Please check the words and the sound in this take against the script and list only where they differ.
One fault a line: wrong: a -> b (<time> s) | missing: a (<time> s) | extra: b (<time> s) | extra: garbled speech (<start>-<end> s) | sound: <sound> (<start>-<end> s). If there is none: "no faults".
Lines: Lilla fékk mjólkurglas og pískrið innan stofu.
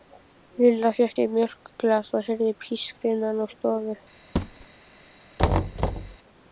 extra: sér (1.2 s)
extra: heyrði (2.3 s)
extra: úr (3.5 s)
sound: thud (4.4-4.7 s)
sound: thud (5.4-6.2 s)